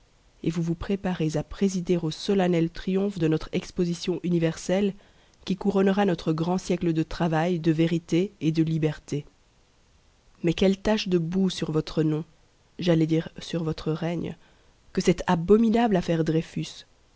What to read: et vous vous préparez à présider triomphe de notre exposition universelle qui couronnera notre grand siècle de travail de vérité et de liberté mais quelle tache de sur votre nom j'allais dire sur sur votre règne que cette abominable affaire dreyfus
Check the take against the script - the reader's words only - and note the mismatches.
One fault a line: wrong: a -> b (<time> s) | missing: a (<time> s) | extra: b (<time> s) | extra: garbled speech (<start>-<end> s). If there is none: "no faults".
extra: au solennel (2.0 s)
extra: boue (11.2 s)
missing: sur (13.6 s)